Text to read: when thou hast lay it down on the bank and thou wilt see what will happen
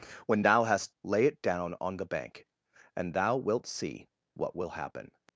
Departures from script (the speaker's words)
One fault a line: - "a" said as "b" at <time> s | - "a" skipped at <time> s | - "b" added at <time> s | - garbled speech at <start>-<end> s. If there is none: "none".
none